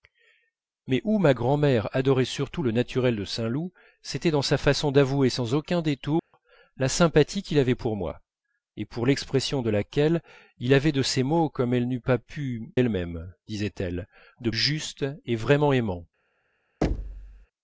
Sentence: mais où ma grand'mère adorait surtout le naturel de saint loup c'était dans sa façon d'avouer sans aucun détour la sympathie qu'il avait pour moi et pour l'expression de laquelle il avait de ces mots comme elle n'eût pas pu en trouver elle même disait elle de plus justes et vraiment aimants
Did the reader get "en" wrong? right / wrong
wrong